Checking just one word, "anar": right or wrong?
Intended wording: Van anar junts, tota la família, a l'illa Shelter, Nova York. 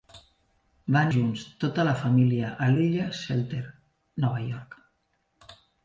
wrong